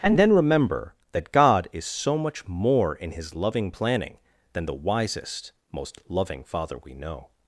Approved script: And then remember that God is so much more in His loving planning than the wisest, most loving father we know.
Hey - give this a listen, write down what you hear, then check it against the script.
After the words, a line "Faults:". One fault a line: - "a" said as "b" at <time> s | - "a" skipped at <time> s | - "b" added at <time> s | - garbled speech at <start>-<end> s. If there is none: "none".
And then remember that God is so much more in His loving planning than the wisest, most loving father we know.
Faults:
none